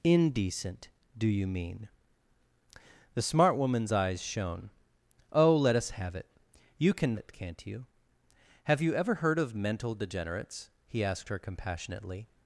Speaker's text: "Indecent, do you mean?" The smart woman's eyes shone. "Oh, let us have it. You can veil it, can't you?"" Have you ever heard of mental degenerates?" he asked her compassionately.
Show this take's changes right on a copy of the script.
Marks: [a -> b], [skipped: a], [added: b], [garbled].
"Indecent, do you mean?" The smart woman's eyes shone. "Oh, let us have it. You can [skipped: veil] it, can't you?"" Have you ever heard of mental degenerates?" he asked her compassionately.